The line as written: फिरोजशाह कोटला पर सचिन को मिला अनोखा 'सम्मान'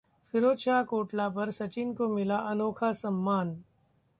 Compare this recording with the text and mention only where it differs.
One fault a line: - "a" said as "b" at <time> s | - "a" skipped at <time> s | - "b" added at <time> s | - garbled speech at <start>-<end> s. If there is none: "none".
none